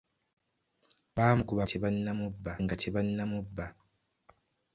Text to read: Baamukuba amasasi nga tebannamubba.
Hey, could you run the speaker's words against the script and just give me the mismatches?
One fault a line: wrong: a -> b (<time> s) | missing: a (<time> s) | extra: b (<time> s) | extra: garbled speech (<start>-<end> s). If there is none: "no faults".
wrong: amasasi -> tebannamubba (1.7 s)